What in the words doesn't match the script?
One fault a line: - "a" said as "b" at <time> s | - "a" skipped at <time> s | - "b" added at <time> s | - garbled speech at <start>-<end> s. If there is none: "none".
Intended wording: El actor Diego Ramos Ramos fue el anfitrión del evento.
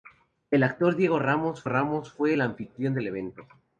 none